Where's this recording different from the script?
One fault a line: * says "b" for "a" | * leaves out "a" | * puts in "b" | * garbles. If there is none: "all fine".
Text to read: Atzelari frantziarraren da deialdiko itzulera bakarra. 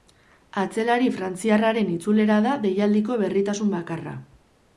* puts in "itzulera"
* says "berritasun" for "itzulera"